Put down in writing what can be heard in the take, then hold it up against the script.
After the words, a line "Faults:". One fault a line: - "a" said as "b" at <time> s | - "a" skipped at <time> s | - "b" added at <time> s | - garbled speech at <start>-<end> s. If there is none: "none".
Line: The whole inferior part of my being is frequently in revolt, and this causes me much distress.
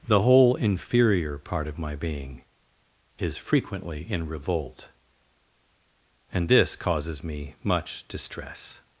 The whole inferior part of my being is frequently in revolt, and this causes me much distress.
Faults:
none